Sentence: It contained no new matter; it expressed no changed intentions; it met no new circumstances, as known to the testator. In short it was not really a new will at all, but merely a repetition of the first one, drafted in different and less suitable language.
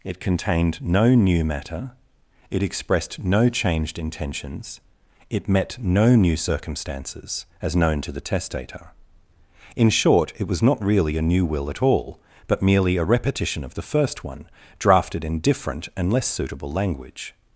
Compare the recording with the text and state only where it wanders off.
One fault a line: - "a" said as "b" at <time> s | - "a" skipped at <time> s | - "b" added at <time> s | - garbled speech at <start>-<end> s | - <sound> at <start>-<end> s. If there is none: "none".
none